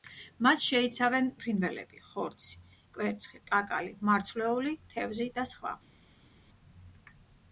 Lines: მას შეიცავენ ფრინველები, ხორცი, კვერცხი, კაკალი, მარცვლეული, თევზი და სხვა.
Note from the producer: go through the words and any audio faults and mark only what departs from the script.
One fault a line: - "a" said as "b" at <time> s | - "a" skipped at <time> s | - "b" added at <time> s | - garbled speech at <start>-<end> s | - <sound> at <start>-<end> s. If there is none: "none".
none